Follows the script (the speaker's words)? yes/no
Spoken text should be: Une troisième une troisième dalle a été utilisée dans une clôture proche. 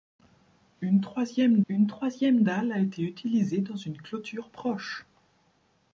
yes